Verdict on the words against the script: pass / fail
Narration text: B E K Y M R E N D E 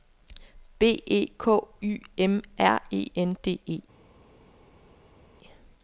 pass